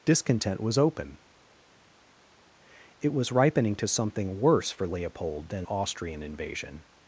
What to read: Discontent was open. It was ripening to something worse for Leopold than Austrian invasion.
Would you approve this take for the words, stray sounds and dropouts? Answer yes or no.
yes